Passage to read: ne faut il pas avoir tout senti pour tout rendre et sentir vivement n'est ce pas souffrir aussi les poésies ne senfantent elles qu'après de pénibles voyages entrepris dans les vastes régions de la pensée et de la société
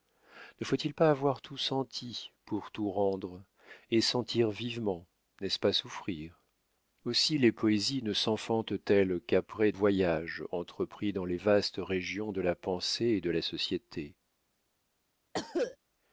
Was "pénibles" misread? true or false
true